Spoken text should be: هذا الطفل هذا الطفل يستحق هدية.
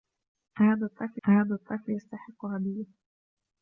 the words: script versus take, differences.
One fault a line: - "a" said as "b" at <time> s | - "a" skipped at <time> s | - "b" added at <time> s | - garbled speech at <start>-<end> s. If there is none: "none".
none